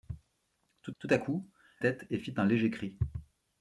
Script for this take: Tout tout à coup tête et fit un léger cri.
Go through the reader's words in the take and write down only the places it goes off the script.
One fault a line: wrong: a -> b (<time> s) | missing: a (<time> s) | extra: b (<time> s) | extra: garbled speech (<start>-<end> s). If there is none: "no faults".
no faults